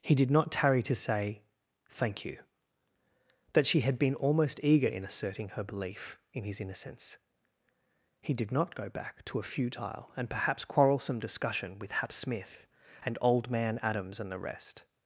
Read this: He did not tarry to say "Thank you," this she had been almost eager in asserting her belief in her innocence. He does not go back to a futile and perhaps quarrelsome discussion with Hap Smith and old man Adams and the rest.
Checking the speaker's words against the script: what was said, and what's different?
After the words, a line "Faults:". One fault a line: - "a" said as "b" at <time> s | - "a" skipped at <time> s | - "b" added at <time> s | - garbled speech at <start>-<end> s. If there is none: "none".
He did not tarry to say "Thank you," that she had been almost eager in asserting her belief in his innocence. He did not go back to a futile and perhaps quarrelsome discussion with Hap Smith and old man Adams and the rest.
Faults:
- "this" said as "that" at 3.5 s
- "her" said as "his" at 6.4 s
- "does" said as "did" at 8.3 s